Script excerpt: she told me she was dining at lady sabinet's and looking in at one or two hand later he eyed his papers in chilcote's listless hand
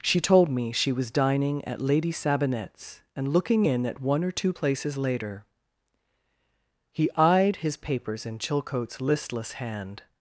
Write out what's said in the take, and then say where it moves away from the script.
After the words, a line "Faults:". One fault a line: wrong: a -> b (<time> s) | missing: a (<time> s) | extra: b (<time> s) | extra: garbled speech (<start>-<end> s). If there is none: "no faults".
she told me she was dining at lady sabinet's and looking in at one or two places later he eyed his papers in chilcote's listless hand
Faults:
wrong: hand -> places (4.5 s)